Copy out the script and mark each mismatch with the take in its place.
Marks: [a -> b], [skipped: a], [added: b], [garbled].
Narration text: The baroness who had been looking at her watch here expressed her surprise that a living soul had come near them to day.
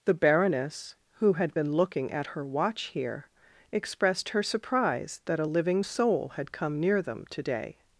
The baroness who had been looking at her watch here expressed her surprise that a living soul had come near them to day.